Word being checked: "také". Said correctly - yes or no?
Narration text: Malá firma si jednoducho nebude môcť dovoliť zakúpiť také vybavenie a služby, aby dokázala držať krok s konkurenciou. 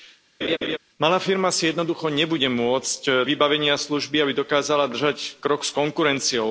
no